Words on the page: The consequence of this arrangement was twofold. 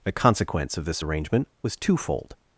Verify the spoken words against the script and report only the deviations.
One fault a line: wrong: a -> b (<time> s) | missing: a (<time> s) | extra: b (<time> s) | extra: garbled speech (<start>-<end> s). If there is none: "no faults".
no faults